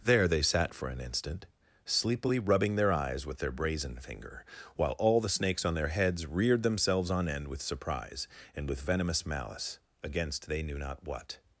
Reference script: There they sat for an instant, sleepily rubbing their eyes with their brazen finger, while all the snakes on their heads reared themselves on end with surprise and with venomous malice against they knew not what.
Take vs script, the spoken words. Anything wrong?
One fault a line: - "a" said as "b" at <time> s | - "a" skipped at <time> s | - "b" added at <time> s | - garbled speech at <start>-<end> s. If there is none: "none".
none